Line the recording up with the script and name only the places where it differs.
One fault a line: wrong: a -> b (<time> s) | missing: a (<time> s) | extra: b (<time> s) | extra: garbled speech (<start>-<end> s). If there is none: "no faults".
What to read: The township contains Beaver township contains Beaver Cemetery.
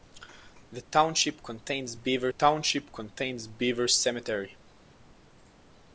no faults